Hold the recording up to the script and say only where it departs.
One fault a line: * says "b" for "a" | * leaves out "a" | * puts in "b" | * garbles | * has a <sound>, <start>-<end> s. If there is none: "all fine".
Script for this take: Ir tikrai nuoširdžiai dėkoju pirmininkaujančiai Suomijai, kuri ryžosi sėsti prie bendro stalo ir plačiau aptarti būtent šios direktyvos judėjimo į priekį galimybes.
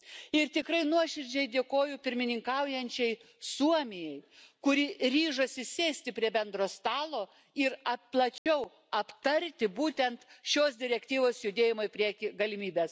* has a dropout, 8.4-8.5 s